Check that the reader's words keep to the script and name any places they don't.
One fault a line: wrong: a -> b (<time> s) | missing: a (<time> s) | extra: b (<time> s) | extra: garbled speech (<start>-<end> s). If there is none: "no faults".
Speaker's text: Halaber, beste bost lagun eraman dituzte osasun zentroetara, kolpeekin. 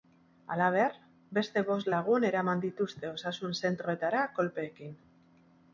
no faults